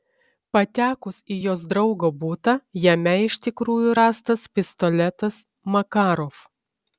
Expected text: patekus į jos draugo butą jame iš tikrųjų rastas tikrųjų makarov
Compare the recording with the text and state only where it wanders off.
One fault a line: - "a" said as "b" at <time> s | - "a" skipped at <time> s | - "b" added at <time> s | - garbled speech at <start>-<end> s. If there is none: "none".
- "tikrųjų" said as "pistoletas" at 4.6 s